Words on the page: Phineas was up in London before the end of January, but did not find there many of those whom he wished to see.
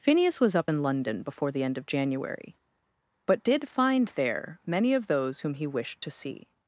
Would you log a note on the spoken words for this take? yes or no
yes